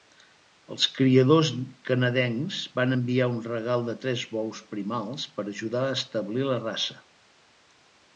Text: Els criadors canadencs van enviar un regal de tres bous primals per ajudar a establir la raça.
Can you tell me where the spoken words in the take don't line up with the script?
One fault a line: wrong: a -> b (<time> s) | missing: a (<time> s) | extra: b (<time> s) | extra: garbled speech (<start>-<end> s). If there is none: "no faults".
no faults